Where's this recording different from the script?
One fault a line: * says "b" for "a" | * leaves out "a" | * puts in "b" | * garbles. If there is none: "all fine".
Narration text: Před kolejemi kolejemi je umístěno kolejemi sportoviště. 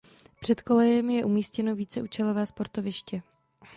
* leaves out "kolejemi"
* says "víceúčelové" for "kolejemi"